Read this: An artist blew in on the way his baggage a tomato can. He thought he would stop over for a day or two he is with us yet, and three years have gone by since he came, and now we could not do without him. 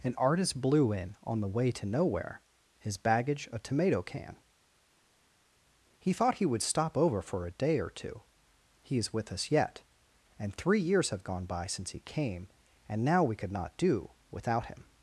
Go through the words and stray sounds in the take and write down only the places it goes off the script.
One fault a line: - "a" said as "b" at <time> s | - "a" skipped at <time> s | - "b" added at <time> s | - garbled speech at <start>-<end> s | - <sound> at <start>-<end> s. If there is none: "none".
- "to Nowhere" added at 1.7 s